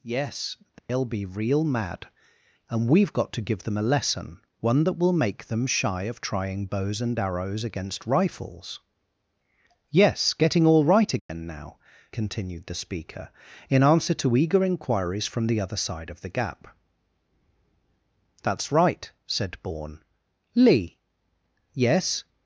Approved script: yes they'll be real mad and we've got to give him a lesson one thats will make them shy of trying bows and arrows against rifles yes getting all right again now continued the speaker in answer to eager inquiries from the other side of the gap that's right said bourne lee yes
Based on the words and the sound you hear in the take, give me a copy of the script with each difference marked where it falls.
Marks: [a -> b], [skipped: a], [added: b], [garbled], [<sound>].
yes they'll [dropout] be real mad and we've got to give [him -> them] a lesson one [thats -> that] will make them shy of trying bows and arrows against rifles yes getting all right again [dropout] now continued the speaker in answer to eager inquiries from the other side of the gap that's right said bourne lee yes